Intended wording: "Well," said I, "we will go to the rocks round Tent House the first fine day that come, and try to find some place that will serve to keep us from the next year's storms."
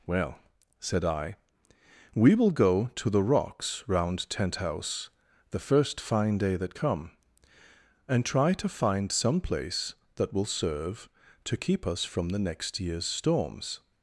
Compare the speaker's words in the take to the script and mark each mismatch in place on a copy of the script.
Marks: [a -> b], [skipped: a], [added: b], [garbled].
"Well," said I, "we will go to the rocks round Tent House the first fine day that come, and try to find some place that will serve to keep us from the next year's storms."